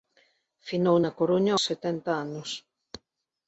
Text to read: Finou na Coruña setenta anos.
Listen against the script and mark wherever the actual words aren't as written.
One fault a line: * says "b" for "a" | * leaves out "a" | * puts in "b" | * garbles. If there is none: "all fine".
all fine